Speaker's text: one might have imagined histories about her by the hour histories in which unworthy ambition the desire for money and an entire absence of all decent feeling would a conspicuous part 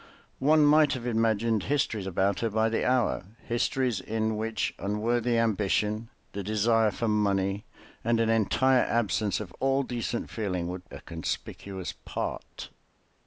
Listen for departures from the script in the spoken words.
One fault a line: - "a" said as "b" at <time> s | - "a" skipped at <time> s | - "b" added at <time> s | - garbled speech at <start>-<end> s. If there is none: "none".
none